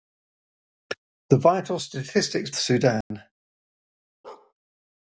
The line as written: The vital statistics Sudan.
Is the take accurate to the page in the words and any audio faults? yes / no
no